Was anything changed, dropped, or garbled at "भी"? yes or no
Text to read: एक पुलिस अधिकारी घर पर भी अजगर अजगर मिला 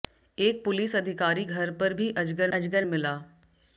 no